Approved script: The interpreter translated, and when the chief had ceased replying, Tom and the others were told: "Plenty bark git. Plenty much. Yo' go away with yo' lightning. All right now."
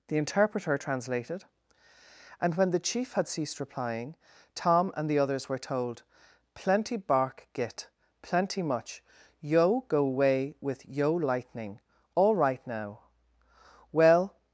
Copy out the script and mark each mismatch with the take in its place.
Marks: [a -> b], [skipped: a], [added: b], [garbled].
The interpreter translated, and when the chief had ceased replying, Tom and the others were told: "Plenty bark git. Plenty much. Yo' go away with yo' lightning. All right now." [added: Well]